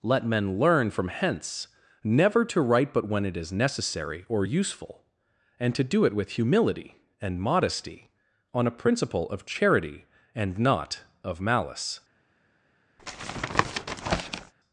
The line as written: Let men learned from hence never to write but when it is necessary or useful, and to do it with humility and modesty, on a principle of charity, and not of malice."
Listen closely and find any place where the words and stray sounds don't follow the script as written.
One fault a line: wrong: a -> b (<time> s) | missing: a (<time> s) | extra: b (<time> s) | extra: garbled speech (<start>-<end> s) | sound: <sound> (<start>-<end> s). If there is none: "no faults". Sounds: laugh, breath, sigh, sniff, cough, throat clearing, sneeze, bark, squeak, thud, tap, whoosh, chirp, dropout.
wrong: learned -> learn (0.6 s)
sound: tap (13.0-14.5 s)